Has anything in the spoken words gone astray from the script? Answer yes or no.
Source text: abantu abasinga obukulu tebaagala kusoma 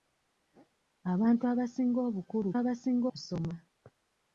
yes